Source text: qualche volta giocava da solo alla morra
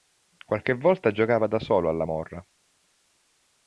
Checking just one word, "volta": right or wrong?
right